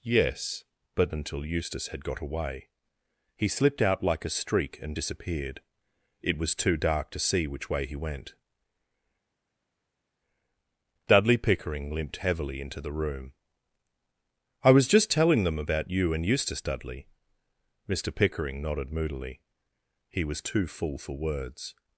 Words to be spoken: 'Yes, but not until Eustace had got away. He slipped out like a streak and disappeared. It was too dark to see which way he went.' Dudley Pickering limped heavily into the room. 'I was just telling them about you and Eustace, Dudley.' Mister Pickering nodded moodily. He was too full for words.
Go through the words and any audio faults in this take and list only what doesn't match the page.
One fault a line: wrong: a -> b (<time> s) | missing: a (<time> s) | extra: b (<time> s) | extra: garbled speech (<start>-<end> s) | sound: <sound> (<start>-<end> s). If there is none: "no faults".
missing: not (1.1 s)